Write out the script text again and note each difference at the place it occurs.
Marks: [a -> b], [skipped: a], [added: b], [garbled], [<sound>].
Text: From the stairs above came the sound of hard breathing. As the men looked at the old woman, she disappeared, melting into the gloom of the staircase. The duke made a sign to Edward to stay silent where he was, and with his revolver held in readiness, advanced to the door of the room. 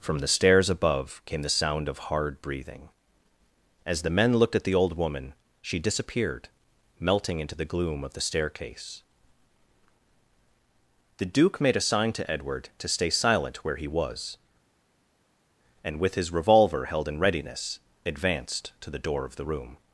From the stairs above came the sound of hard breathing. As the men looked at the old woman, she disappeared, melting into the gloom of the staircase. The duke made a sign to Edward to stay silent where he was, and with his revolver held in readiness, advanced to the door of the room.